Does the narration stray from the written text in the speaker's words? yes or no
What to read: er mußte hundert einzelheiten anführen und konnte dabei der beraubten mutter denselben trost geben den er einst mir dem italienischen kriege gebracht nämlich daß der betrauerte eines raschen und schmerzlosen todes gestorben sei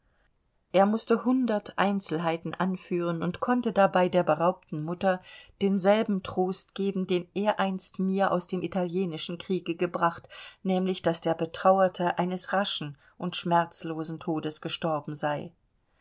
yes